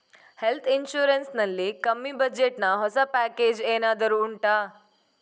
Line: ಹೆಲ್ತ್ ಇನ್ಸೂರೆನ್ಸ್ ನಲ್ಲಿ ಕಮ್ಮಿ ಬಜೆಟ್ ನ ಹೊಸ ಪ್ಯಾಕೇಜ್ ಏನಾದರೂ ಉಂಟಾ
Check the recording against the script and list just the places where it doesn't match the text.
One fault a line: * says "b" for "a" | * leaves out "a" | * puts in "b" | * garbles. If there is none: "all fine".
all fine